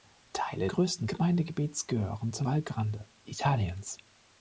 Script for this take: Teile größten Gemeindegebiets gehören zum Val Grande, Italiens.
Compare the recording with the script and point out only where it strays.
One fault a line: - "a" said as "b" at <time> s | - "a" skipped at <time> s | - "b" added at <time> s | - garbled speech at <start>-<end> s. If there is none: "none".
none